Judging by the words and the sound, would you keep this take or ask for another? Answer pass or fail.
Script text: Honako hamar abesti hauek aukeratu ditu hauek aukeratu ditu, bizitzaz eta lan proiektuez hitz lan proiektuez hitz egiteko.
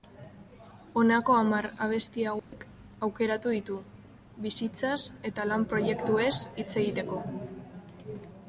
fail